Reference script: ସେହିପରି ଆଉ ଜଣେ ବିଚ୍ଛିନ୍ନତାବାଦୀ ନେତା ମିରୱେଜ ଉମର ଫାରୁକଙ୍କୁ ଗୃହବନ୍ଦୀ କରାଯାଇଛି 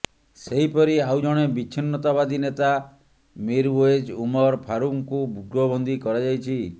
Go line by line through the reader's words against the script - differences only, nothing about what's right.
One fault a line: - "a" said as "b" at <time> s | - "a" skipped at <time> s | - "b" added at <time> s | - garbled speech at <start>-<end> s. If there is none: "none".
none